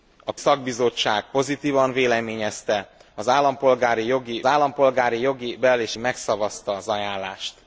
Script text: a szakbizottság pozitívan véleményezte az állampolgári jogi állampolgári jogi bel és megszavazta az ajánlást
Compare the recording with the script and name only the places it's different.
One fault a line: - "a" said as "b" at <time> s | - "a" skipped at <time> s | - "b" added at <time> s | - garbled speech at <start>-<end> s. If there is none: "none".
none